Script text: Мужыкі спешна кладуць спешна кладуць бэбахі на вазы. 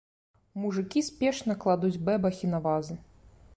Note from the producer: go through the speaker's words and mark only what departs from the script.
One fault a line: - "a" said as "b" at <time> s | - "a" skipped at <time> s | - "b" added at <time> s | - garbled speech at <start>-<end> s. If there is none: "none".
- "спешна кладуць" skipped at 2.0 s